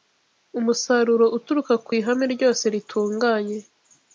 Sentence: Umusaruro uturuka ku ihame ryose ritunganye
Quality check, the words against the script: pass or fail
pass